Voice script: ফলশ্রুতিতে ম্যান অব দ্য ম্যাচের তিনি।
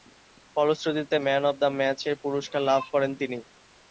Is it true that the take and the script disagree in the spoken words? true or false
true